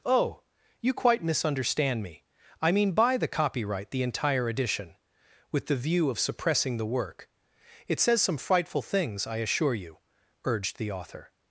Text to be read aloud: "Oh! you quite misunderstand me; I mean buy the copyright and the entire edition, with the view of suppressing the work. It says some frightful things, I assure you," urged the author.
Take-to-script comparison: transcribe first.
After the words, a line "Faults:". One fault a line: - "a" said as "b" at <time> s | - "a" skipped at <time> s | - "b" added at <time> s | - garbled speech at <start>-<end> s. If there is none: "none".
"Oh! you quite misunderstand me; I mean buy the copyright the entire edition, with the view of suppressing the work. It says some frightful things, I assure you," urged the author.
Faults:
- "and" skipped at 3.9 s